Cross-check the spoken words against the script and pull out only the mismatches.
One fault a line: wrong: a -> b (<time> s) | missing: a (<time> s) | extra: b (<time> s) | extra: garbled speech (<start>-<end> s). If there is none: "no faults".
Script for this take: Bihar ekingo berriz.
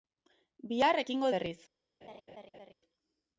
no faults